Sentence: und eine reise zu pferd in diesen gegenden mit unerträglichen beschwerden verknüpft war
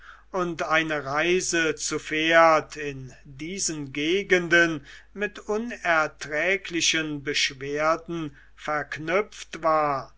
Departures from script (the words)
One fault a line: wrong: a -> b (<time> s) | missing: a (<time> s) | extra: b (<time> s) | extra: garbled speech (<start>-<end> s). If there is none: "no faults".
no faults